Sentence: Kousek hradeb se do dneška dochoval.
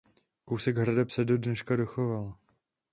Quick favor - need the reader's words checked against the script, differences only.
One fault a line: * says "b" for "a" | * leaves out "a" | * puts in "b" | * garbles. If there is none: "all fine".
all fine